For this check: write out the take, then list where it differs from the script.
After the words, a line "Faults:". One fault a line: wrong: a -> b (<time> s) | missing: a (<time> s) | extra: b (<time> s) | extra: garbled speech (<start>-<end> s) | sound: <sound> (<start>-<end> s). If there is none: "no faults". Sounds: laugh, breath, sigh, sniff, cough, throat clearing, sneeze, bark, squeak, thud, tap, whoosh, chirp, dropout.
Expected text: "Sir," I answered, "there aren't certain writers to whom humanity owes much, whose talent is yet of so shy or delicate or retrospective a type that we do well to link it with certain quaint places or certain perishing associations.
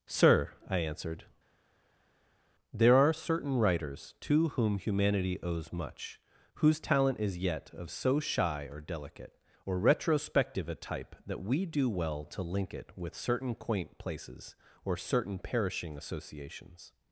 "Sir," I answered, "there are certain writers to whom humanity owes much, whose talent is yet of so shy or delicate or retrospective a type that we do well to link it with certain quaint places or certain perishing associations.
Faults:
wrong: aren't -> are (2.9 s)